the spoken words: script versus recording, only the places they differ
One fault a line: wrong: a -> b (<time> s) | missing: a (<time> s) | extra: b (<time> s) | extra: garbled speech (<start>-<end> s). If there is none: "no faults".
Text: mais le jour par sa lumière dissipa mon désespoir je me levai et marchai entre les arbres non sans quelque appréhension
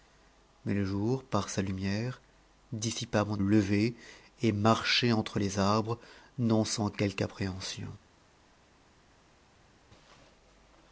missing: désespoir je me (3.4 s)